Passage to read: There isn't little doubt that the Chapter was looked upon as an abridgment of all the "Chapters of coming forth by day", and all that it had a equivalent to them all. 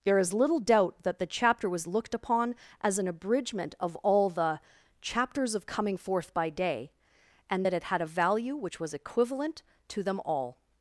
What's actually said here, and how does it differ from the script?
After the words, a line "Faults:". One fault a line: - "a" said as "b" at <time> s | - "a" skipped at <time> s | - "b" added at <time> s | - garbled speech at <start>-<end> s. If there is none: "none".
There is little doubt that the Chapter was looked upon as an abridgment of all the "Chapters of coming forth by day", and that it had a value which was equivalent to them all.
Faults:
- "isn't" said as "is" at 0.2 s
- "all" skipped at 7.7 s
- "value which was" added at 8.0 s